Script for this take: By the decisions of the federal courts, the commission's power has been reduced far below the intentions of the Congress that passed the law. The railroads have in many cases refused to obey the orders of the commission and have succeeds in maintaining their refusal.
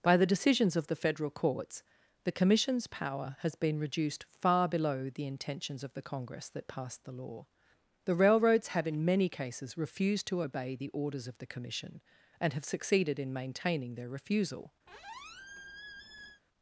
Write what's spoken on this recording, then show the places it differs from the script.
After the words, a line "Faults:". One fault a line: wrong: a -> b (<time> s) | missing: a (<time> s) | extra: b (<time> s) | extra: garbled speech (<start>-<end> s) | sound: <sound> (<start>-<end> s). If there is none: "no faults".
By the decisions of the federal courts, the commission's power has been reduced far below the intentions of the Congress that passed the law. The railroads have in many cases refused to obey the orders of the commission and have succeeded in maintaining their refusal.
Faults:
wrong: succeeds -> succeeded (12.6 s)
sound: squeak (14.9-16.4 s)